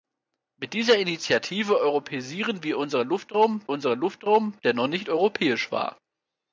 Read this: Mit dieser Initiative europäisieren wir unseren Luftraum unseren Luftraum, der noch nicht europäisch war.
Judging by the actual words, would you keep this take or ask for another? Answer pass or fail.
pass